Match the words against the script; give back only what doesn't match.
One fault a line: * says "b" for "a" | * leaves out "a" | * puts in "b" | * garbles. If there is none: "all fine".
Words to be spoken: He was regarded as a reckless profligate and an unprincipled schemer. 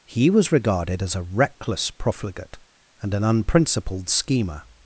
all fine